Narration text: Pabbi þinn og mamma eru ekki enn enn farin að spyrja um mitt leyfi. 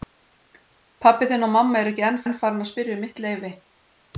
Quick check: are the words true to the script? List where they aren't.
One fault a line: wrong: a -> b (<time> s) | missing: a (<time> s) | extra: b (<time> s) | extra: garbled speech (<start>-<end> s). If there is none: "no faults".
no faults